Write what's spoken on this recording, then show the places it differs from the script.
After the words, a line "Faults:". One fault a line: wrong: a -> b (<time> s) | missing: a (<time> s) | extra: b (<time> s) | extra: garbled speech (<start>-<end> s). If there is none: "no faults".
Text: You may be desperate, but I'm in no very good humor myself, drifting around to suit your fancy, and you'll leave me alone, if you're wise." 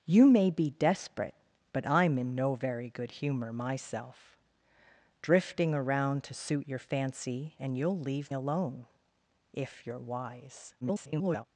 You may be desperate, but I'm in no very good humor myself, drifting around to suit your fancy, and you'll leave alone, if you're wise." [garbled]
Faults:
missing: me (8.3 s)
extra: garbled speech (10.8-11.4 s)